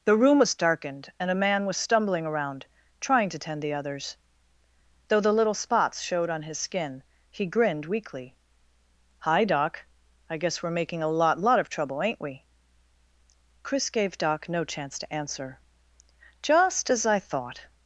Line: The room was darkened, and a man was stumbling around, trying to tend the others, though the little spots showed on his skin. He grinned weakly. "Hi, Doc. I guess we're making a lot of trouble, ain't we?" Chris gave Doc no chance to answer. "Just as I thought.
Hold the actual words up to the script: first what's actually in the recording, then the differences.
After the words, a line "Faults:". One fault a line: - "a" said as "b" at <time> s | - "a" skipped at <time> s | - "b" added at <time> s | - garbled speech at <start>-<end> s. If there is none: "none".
The room was darkened, and a man was stumbling around, trying to tend the others, though the little spots showed on his skin. He grinned weakly. "Hi, Doc. I guess we're making a lot lot of trouble, ain't we?" Chris gave Doc no chance to answer. "Just as I thought.
Faults:
- "lot" added at 11.4 s